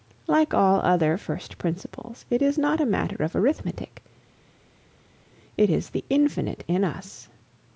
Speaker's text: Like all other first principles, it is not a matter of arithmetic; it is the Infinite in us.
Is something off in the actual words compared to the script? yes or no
no